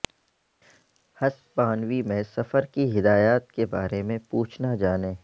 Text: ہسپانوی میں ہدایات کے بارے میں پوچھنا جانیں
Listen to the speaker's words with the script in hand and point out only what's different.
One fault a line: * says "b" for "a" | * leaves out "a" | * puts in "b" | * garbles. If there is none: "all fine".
* puts in "سفر کی"